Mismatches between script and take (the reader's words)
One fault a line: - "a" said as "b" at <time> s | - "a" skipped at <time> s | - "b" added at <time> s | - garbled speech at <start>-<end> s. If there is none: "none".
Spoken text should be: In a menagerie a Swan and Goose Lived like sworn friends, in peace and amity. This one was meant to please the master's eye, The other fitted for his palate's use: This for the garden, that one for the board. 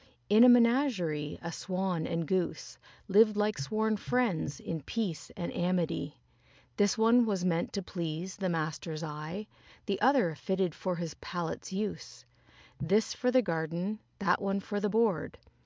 none